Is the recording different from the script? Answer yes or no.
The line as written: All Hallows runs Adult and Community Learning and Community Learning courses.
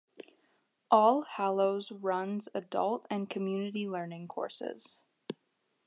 yes